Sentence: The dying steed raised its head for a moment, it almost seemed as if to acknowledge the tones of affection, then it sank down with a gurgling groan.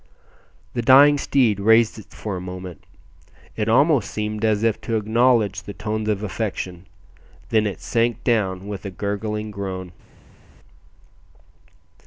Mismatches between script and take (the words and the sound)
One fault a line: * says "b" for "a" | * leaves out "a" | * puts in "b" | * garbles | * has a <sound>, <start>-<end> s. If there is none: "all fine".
* leaves out "head"